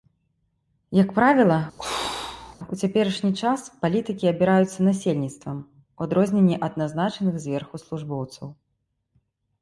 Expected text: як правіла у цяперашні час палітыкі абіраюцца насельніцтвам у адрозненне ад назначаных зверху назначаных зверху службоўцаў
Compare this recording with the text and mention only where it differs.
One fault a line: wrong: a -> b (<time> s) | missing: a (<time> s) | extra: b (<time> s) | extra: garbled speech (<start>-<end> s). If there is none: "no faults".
missing: назначаных зверху (7.8 s)